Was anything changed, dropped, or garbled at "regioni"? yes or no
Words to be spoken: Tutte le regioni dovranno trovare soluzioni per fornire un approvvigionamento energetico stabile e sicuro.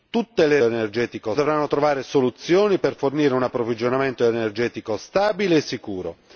yes